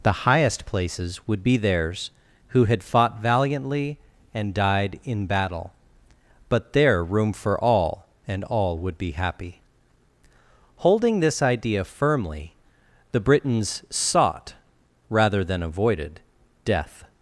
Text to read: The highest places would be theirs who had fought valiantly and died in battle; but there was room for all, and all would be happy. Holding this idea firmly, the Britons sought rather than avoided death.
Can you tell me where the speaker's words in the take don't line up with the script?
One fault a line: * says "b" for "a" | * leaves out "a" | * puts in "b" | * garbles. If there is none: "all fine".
* leaves out "was"